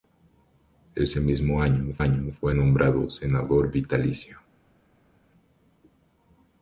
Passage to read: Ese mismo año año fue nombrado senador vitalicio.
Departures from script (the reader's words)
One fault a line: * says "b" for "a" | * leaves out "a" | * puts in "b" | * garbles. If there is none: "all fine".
all fine